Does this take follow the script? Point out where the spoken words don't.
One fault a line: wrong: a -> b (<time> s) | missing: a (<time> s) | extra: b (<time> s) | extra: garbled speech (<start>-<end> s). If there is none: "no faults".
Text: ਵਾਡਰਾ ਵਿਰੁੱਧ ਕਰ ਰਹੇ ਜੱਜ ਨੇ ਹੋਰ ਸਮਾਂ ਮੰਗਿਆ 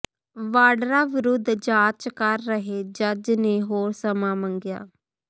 extra: ਜਾਂਚ (1.6 s)